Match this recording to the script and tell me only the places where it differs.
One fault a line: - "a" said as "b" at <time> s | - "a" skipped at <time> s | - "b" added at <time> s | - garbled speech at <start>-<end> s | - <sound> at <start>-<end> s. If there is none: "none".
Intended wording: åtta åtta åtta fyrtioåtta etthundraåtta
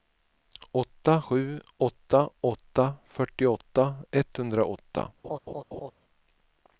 - "sju" added at 1.2 s
- laugh at 5.2-5.9 s